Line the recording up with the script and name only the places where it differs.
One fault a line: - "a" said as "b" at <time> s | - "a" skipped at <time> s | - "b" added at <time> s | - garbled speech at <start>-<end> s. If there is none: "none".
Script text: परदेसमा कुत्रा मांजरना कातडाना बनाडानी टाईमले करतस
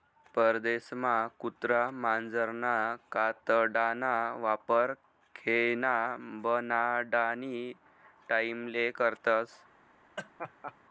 - "वापर खेयना" added at 4.4 s